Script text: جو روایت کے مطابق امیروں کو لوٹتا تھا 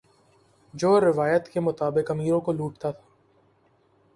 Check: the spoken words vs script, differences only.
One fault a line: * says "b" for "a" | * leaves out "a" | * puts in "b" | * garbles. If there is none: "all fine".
all fine